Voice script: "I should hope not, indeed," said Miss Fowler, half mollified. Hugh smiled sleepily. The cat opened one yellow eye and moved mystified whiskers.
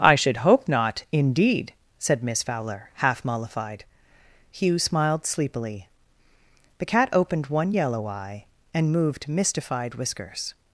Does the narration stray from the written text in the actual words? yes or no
no